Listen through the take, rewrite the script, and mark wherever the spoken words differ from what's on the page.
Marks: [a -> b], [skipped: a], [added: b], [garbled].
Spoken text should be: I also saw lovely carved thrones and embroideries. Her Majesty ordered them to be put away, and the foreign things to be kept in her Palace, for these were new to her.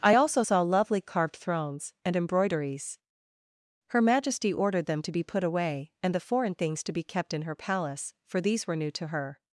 I also saw lovely carved thrones and embroideries. Her Majesty ordered them to be put away, and the foreign things to be kept in her Palace, for these were new to her.